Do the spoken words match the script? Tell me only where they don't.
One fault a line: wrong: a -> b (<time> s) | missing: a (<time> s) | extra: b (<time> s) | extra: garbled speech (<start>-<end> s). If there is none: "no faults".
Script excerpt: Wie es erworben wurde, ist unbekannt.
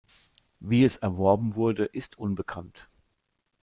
no faults